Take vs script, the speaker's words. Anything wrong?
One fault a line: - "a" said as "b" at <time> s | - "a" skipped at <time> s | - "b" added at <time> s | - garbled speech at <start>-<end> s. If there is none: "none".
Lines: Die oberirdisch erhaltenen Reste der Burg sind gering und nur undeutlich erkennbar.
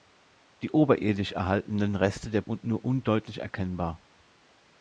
- "Burg sind gering" skipped at 2.4 s